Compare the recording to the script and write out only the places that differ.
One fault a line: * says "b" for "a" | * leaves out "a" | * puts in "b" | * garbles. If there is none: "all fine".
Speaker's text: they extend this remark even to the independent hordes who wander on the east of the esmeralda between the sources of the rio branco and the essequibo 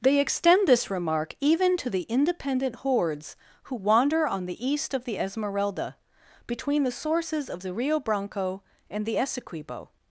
all fine